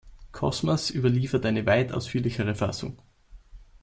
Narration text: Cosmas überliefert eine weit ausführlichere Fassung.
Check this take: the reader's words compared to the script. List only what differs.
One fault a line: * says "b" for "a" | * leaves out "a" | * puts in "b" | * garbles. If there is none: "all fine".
all fine